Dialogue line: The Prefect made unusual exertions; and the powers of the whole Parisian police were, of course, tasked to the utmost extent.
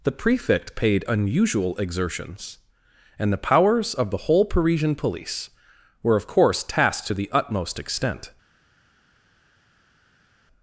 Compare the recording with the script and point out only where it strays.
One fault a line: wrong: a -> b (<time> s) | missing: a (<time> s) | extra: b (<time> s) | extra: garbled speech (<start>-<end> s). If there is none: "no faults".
wrong: made -> paid (0.8 s)